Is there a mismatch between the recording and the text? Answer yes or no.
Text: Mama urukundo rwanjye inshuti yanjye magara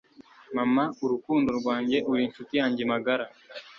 yes